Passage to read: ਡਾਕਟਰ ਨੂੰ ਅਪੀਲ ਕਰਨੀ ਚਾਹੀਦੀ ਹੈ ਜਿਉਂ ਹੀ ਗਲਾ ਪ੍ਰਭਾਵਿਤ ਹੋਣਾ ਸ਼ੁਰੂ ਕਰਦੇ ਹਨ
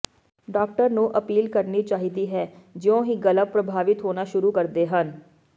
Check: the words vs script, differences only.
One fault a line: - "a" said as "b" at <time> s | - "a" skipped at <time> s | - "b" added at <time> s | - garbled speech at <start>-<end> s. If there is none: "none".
none